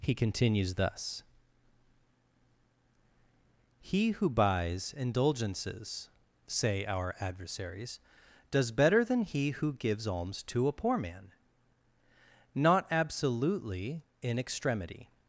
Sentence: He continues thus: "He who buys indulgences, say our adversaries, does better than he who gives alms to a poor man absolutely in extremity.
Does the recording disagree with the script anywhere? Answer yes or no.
yes